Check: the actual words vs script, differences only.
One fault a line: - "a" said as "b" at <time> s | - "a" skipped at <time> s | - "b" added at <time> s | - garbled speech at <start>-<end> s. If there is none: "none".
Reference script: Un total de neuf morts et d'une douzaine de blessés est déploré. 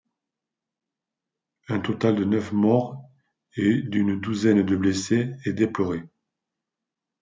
none